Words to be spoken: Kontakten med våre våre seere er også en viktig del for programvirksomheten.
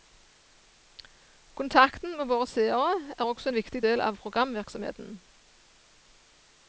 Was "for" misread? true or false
true